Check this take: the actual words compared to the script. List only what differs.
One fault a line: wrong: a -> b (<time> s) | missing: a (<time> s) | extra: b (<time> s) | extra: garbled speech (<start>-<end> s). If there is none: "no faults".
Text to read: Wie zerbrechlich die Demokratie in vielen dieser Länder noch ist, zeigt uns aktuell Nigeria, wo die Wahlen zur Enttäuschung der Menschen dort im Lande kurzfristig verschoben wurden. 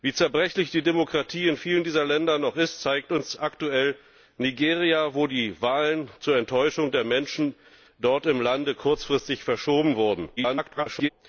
extra: garbled speech (10.4-11.1 s)